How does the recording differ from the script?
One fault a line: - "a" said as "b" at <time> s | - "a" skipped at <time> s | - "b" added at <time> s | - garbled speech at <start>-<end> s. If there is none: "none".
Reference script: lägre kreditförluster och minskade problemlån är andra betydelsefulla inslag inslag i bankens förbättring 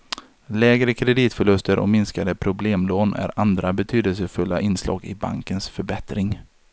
- "inslag" skipped at 5.1 s